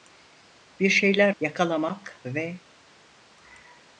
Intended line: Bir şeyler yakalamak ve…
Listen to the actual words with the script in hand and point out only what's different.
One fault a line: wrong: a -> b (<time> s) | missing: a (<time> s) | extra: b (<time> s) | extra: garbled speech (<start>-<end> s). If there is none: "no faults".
no faults